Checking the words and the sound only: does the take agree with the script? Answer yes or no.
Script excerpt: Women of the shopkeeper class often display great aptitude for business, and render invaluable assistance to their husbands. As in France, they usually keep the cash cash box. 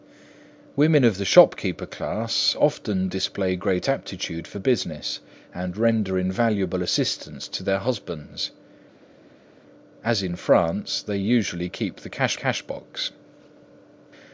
yes